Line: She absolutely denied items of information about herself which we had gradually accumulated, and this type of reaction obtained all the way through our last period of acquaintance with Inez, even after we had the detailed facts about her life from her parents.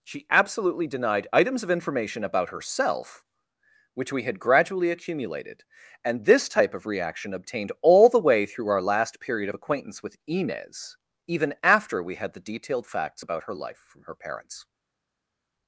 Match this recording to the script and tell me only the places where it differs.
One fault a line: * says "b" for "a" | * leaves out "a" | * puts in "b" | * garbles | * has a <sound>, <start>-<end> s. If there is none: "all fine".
all fine